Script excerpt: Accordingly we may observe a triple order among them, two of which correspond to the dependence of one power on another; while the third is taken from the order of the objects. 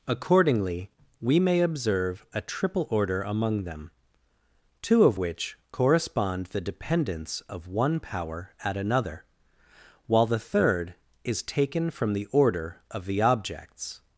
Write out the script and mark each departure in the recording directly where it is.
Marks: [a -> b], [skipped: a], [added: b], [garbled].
Accordingly we may observe a triple order among them, two of which correspond [skipped: to] the dependence of one power [on -> at] another; while the third is taken from the order of the objects.